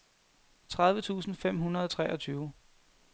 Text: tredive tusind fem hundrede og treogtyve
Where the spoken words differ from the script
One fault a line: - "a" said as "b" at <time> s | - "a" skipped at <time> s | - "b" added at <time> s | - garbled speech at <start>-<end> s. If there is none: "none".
none